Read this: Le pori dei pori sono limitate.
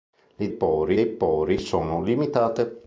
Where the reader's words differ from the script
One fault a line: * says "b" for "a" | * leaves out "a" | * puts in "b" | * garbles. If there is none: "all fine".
all fine